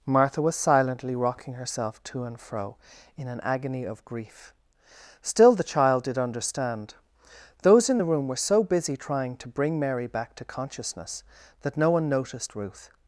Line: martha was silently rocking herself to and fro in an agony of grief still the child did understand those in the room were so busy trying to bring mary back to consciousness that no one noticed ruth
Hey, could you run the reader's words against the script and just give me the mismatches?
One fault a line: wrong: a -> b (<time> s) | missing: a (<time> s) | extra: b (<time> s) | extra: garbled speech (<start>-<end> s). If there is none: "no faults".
no faults